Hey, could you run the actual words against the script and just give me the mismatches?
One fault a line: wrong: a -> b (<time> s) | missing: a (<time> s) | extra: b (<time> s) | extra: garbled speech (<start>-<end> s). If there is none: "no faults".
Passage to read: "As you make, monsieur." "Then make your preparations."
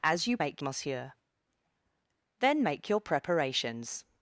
no faults